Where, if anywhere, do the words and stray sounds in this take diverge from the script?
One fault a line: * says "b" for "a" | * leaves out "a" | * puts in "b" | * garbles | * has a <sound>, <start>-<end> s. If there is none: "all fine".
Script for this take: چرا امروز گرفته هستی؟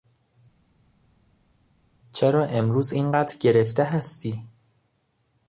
* puts in "اینقدر"